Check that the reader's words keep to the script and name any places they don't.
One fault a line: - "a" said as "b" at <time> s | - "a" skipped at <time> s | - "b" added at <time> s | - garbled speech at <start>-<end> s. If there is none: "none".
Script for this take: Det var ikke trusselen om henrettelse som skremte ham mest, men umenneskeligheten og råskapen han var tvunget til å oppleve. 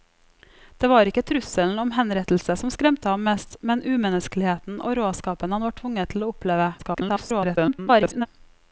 - garbled speech at 6.8-8.3 s